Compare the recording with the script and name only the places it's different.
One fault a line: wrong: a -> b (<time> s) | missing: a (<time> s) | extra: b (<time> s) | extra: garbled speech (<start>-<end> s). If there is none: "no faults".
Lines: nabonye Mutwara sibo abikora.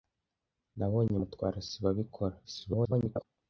extra: garbled speech (2.4-3.2 s)